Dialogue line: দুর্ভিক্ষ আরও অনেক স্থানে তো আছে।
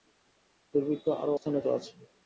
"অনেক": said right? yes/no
no